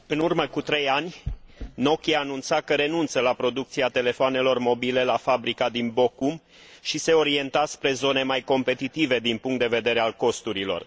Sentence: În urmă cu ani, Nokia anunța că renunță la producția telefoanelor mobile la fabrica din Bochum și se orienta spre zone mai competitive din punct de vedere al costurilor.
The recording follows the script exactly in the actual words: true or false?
false